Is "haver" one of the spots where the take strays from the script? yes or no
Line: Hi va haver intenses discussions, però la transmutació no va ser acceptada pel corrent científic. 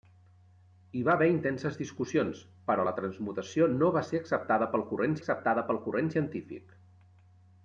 no